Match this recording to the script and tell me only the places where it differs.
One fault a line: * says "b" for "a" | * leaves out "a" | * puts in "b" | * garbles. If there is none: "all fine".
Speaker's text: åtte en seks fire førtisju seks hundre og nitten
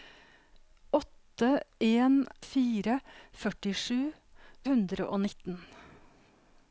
* leaves out "seks"
* leaves out "seks"